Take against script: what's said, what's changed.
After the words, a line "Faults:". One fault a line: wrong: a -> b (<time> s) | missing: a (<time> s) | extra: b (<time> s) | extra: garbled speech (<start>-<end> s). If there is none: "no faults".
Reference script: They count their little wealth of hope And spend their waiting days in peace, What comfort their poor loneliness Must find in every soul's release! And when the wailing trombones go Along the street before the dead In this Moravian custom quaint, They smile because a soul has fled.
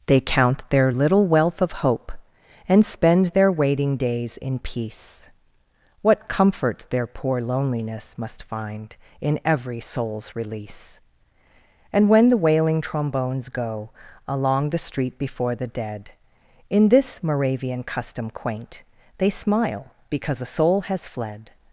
They count their little wealth of hope And spend their waiting days in peace, What comfort their poor loneliness Must find in every soul's release! And when the wailing trombones go Along the street before the dead In this Moravian custom quaint, They smile because a soul has fled.
Faults:
no faults